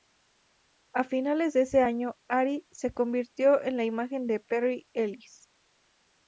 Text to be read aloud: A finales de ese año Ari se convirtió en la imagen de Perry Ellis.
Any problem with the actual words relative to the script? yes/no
no